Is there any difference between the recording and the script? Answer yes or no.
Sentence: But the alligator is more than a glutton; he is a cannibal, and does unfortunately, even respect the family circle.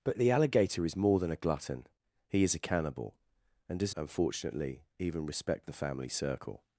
no